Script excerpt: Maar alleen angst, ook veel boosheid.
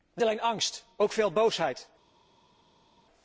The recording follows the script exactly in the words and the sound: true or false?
true